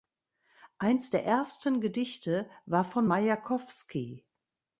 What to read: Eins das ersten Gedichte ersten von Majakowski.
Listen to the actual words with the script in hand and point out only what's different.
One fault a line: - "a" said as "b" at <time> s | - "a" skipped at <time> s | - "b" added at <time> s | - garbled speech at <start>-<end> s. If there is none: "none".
- "das" said as "der" at 1.1 s
- "ersten" said as "war" at 2.6 s